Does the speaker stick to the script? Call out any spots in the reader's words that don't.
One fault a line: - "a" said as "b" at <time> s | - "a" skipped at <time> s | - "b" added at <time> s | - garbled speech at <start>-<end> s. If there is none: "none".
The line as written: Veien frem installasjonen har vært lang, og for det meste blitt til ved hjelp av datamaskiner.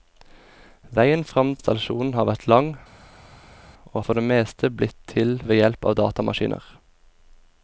none